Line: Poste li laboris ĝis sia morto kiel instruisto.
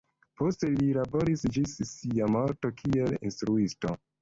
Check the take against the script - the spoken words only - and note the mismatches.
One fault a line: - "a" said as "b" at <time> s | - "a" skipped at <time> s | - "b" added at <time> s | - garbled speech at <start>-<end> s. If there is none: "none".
none